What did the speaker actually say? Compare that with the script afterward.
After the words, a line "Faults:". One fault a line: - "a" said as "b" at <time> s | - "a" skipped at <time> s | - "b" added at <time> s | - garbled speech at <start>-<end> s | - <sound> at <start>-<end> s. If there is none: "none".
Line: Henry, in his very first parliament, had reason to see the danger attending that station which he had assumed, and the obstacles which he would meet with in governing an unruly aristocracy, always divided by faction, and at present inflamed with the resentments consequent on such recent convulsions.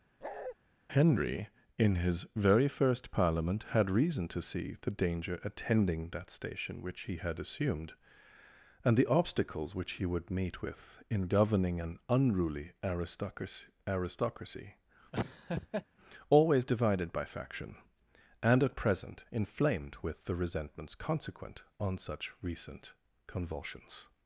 Henry, in his very first parliament, had reason to see the danger attending that station which he had assumed, and the obstacles which he would meet with in governing an unruly aristocracy aristocracy, always divided by faction, and at present inflamed with the resentments consequent on such recent convulsions.
Faults:
- bark at 0.2-0.6 s
- "aristocracy" added at 13.9 s
- laugh at 15.1-15.9 s